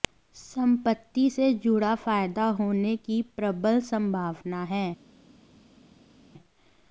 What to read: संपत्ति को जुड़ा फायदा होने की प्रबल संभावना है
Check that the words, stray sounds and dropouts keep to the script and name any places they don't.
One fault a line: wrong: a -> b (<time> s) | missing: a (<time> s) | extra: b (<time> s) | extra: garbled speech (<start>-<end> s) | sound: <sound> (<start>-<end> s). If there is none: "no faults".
wrong: को -> से (1.3 s)